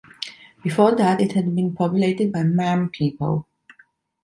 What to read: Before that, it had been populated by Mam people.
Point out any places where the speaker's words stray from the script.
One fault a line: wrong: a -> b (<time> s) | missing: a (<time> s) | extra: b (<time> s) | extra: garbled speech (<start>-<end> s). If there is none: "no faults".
no faults